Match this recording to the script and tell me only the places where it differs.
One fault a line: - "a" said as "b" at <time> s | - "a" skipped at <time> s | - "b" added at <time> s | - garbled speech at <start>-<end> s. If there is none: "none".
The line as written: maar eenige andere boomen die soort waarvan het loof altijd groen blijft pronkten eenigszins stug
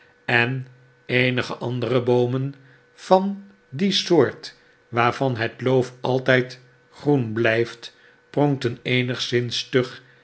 - "maar" said as "en" at 0.2 s
- "van" added at 2.9 s